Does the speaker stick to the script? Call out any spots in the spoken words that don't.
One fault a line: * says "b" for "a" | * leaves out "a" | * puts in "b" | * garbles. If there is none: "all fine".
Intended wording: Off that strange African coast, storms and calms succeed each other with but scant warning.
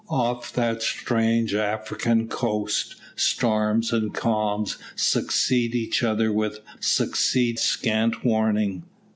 * says "succeed" for "but"